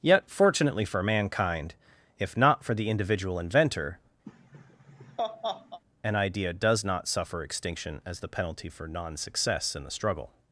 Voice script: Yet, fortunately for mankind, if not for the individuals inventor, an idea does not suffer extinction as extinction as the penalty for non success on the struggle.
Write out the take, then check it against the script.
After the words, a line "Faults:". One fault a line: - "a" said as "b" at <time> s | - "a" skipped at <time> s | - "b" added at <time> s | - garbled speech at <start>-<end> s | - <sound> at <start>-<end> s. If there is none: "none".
Yet, fortunately for mankind, if not for the individual inventor, an idea does not suffer extinction as the penalty for non success in the struggle.
Faults:
- "individuals" said as "individual" at 2.9 s
- laugh at 4.2-5.8 s
- "extinction as" skipped at 8.2 s
- "on" said as "in" at 9.7 s